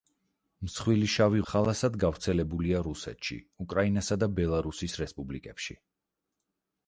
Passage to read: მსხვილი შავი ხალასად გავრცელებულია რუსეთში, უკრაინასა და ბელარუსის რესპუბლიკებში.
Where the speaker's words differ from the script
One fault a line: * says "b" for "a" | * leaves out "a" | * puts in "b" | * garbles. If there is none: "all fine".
all fine